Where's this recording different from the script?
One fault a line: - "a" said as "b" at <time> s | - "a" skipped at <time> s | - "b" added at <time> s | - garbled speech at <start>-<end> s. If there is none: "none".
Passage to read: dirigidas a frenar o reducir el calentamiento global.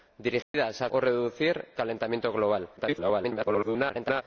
- "frenar" skipped at 0.9 s
- "el" skipped at 1.7 s
- garbled speech at 2.8-4.2 s